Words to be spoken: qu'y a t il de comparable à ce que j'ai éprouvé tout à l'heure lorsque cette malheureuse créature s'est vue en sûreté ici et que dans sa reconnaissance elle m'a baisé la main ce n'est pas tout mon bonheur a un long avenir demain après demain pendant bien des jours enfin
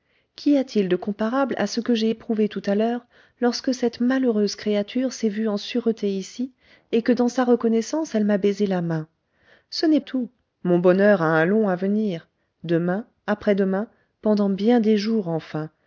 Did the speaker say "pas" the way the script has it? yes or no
no